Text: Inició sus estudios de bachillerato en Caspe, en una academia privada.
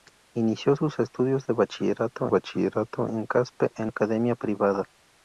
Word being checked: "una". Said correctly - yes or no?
no